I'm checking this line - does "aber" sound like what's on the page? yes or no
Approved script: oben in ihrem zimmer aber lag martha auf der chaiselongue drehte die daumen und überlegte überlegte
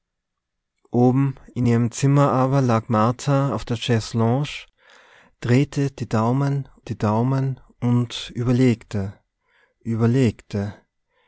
yes